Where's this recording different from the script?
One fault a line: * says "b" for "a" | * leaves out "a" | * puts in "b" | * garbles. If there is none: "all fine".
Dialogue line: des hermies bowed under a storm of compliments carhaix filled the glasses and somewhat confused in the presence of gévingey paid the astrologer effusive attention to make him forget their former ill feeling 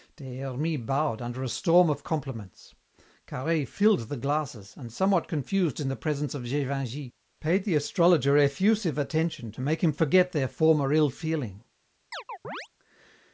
all fine